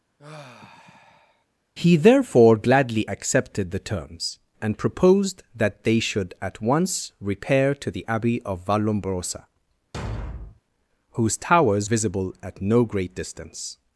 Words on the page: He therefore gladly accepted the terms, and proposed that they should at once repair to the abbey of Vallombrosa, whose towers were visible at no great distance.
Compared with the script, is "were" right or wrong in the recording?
wrong